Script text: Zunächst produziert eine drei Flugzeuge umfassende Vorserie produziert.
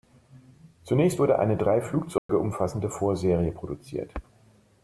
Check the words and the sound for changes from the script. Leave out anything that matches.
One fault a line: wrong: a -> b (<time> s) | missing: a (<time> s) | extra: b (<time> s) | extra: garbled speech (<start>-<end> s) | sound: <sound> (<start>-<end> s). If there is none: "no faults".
wrong: produziert -> wurde (1.2 s)
sound: dropout (2.2-2.3 s)